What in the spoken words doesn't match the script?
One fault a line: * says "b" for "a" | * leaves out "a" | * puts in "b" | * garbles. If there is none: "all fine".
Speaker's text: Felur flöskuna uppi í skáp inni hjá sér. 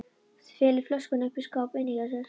all fine